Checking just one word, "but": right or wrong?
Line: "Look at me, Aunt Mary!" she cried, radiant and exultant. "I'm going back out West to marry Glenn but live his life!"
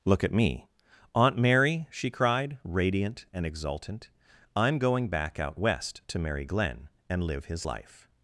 wrong